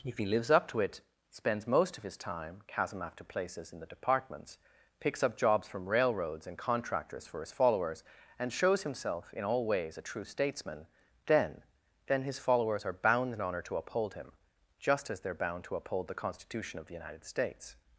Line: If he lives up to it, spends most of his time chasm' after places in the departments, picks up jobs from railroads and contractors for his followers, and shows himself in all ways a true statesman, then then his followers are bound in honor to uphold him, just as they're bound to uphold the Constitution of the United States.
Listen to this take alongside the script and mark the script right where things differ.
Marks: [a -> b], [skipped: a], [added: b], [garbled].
If he lives up to it, spends most of his time chasm' after places in the departments, picks up jobs from railroads and contractors for his followers, and shows himself in all ways a true statesman, then then his followers are bound in honor to uphold him, just as they're bound to uphold the Constitution of the United States.